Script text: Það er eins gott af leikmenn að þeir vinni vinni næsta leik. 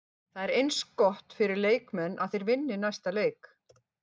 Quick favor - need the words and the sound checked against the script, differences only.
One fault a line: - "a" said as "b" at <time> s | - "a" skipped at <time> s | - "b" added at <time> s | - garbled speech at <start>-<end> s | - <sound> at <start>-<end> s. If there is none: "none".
- "af" said as "fyrir" at 1.4 s
- "vinni" skipped at 2.8 s